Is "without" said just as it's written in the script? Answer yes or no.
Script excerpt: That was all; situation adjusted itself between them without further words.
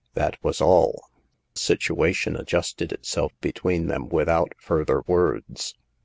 yes